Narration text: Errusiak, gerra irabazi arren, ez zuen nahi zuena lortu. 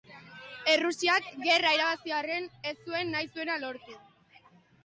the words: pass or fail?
pass